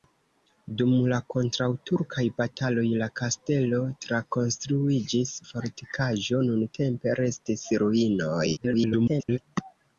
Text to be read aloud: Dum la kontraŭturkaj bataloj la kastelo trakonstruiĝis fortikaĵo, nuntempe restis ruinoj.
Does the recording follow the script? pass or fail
fail